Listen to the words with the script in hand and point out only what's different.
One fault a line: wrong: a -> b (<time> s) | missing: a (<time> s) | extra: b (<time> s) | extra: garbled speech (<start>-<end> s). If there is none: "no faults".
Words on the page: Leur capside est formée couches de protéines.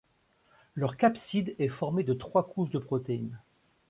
extra: de trois (2.0 s)